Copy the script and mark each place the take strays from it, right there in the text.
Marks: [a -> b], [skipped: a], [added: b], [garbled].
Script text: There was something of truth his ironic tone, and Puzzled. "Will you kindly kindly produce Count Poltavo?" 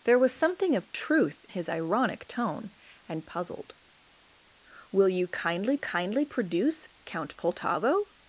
There was something of truth his ironic tone, and Puzzled. "Will you kindly kindly produce Count Poltavo?"